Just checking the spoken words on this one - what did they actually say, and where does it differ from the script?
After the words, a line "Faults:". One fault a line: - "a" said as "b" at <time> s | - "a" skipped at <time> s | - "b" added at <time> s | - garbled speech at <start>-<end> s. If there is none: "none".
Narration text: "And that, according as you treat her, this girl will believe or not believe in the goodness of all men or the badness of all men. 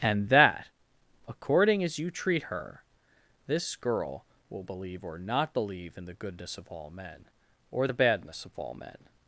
"And that, according as you treat her, this girl will believe or not believe in the goodness of all men or the badness of all men.
Faults:
none